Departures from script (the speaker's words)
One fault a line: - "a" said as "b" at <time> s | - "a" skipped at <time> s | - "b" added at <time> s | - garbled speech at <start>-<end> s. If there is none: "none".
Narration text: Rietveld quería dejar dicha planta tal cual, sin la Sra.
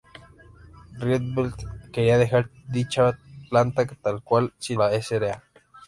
none